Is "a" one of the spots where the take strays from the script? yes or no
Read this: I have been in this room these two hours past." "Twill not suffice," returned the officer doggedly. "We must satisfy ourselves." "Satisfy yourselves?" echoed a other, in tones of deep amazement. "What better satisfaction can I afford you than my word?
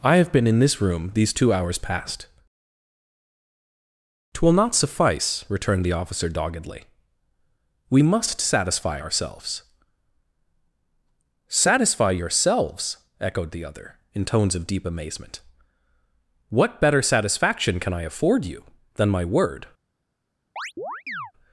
yes